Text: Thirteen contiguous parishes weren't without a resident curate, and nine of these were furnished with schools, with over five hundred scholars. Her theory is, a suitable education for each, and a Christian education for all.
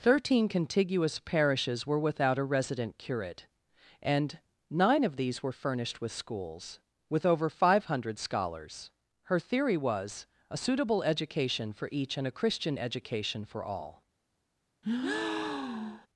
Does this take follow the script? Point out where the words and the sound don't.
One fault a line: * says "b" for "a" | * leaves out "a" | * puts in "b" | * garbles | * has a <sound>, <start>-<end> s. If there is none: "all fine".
* says "were" for "weren't"
* says "was" for "is"
* has a breath, 14.8-16.1 s